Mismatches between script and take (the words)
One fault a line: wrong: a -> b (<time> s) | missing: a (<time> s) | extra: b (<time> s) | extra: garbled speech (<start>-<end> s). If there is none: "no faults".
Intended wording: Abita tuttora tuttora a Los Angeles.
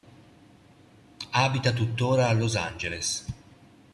missing: tuttora (2.3 s)